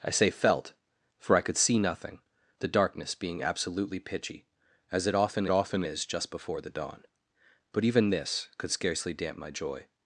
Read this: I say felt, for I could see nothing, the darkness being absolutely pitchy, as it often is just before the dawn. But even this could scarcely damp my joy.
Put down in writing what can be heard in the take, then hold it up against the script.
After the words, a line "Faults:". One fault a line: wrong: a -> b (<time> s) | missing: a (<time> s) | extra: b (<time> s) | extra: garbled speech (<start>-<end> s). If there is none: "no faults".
I say felt, for I could see nothing, the darkness being absolutely pitchy, as it often often is just before the dawn. But even this could scarcely damp my joy.
Faults:
extra: often (5.5 s)